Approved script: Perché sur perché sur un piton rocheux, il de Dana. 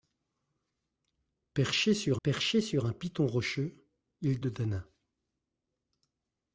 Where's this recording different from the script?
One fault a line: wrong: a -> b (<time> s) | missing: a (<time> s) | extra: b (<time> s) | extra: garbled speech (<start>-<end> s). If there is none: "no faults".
no faults